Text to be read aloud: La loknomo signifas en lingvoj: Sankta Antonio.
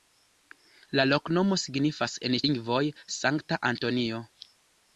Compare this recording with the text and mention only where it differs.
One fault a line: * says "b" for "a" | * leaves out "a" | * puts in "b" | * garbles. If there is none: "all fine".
all fine